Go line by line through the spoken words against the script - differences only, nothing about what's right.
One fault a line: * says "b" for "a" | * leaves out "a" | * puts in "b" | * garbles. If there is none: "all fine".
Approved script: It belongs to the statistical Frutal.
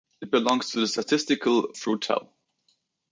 all fine